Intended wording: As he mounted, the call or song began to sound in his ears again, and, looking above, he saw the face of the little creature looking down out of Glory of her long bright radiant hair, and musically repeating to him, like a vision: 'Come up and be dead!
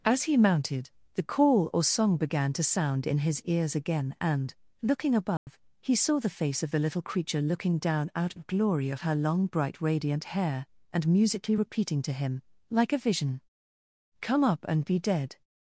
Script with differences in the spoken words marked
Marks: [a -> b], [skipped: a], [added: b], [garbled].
As he mounted, the call or song began to sound in his ears again, and, looking above, he saw the face of the little creature looking down out of Glory of her long bright radiant hair, and musically repeating to him, like a vision: 'Come up and be dead!